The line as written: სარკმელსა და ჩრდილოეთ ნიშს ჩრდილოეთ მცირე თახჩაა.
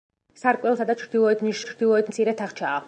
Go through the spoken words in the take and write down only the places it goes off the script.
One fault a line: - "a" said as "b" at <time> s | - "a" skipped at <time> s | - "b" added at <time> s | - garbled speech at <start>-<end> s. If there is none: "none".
none